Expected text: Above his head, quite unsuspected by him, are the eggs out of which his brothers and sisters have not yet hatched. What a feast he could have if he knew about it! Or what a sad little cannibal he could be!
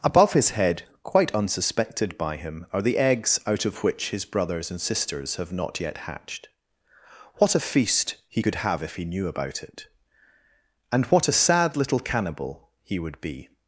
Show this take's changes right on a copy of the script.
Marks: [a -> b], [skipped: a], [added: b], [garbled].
Above his head, quite unsuspected by him, are the eggs out of which his brothers and sisters have not yet hatched. What a feast he could have if he knew about it! [Or -> And] what a sad little cannibal he [could -> would] be!